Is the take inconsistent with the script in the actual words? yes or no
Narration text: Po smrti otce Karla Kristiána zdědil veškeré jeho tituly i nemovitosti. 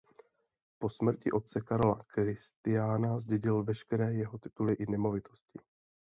no